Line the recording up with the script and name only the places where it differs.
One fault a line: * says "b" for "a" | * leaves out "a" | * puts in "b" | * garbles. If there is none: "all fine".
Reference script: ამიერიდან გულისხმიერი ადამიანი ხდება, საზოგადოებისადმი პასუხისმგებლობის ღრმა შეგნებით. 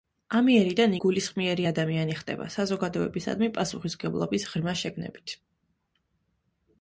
all fine